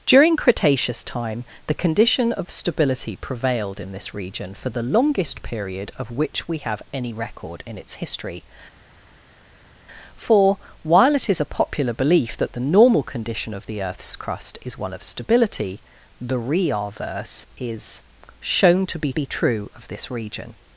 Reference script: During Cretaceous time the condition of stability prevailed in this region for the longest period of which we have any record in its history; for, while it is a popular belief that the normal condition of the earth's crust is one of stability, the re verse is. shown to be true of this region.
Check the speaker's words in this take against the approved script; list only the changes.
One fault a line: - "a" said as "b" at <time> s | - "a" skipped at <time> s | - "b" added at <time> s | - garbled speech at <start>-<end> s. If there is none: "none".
- "be" added at 19.1 s